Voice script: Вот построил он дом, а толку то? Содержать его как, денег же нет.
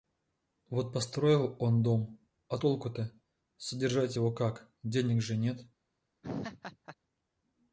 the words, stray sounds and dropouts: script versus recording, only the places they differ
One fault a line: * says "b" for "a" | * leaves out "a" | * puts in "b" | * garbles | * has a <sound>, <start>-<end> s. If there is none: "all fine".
* has a laugh, 6.2-7.0 s